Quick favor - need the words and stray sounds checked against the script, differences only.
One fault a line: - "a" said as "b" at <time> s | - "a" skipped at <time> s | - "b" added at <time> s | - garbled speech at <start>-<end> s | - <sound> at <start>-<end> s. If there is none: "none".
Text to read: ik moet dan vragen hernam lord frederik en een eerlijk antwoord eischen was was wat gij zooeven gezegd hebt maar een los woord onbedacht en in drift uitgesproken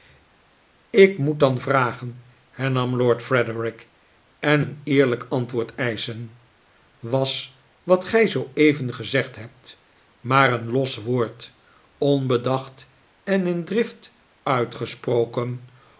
- "was" skipped at 7.6 s